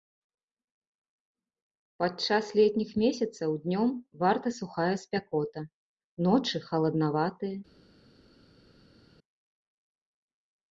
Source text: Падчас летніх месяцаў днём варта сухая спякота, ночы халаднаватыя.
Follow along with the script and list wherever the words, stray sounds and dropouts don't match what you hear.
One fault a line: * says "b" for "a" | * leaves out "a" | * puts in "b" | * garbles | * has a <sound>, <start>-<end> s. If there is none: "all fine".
all fine